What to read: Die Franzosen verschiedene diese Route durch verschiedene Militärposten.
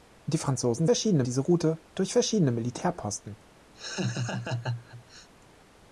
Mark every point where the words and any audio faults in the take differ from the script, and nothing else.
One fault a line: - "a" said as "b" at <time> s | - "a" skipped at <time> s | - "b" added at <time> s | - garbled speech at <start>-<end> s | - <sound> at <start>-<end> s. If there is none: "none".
- laugh at 3.7-5.3 s